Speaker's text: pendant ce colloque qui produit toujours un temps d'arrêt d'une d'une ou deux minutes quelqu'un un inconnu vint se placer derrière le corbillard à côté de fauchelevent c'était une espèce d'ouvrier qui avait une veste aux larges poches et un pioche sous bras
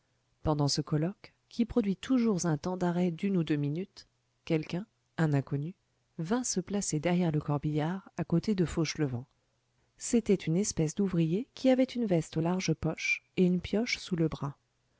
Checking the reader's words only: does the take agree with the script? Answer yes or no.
no